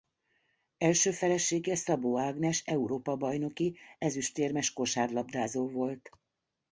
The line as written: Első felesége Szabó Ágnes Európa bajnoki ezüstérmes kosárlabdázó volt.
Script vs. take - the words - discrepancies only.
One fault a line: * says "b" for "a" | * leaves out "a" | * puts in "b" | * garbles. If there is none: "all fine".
all fine